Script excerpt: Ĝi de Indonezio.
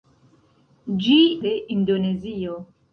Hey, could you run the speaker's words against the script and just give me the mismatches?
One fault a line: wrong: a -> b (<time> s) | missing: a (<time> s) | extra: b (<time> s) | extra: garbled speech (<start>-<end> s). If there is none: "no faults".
no faults